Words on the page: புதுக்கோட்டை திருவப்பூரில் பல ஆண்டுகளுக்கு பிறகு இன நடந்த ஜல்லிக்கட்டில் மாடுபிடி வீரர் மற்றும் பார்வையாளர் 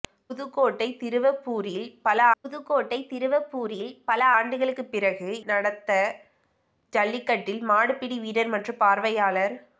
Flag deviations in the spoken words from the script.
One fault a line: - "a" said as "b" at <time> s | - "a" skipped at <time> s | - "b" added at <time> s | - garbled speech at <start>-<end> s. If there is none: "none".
- "புதுக்கோட்டை திருவப்பூரில் பல" added at 2.4 s
- "இன" skipped at 5.3 s